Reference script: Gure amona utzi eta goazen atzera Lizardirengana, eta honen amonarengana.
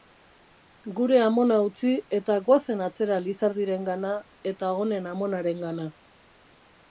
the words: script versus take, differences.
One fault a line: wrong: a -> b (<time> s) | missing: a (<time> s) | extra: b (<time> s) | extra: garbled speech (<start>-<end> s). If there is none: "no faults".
no faults